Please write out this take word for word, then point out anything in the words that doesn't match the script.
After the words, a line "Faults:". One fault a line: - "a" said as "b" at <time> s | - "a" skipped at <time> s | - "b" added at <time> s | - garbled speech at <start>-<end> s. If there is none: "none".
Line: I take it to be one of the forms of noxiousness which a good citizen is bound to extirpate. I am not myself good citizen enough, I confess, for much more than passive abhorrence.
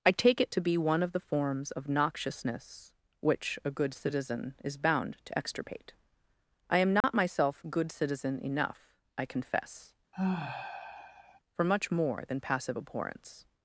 I take it to be one of the forms of noxiousness which a good citizen is bound to extirpate. I am not myself good citizen enough, I confess, for much more than passive abhorrence.
Faults:
none